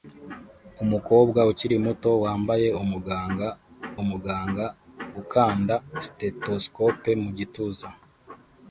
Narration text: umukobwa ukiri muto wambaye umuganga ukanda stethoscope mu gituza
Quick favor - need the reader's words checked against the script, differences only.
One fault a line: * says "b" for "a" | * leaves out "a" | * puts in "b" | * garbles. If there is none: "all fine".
* puts in "umuganga"